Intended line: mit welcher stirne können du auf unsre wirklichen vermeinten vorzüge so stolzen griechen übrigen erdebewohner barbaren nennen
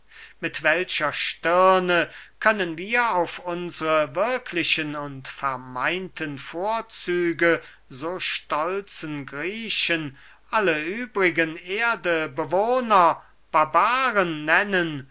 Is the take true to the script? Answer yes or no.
no